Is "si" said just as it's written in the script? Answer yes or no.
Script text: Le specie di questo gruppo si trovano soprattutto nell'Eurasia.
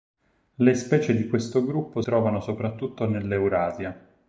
no